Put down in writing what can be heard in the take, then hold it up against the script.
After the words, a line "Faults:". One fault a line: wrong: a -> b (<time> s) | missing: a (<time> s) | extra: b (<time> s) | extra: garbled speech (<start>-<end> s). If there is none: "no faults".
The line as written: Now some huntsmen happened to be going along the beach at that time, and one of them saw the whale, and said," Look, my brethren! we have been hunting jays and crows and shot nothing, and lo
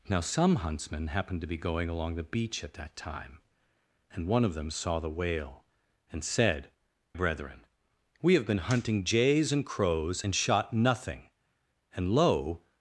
Now some huntsmen happened to be going along the beach at that time, and one of them saw the whale, and said," Brethren! we have been hunting jays and crows and shot nothing, and lo
Faults:
missing: Look my (6.7 s)